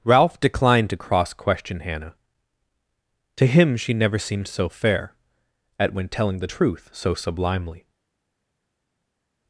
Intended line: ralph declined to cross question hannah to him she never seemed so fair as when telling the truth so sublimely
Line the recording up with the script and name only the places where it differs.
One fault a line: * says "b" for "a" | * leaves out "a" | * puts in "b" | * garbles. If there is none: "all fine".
* says "at" for "as"